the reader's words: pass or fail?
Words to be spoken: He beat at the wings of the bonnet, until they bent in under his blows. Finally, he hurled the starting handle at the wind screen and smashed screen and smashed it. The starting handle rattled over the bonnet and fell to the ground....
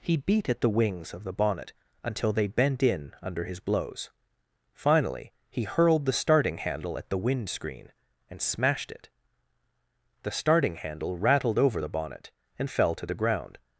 fail